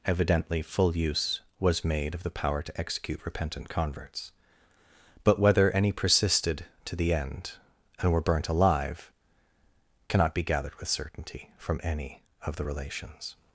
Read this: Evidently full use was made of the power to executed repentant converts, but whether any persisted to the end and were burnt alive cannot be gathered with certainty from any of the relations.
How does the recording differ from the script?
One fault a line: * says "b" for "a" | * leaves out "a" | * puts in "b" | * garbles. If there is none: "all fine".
* says "execute" for "executed"